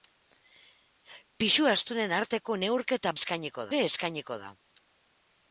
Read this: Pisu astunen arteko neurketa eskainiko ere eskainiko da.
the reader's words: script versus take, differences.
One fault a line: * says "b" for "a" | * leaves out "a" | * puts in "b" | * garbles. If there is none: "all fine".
all fine